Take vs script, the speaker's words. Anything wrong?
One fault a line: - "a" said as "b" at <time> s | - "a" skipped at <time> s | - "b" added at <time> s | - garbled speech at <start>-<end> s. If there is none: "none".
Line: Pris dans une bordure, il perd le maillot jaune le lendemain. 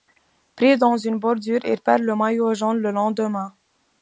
none